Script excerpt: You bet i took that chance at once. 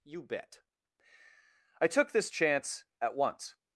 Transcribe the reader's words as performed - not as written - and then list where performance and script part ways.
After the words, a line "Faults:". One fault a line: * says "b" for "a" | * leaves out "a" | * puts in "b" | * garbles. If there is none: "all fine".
You bet i took this chance at once.
Faults:
* says "this" for "that"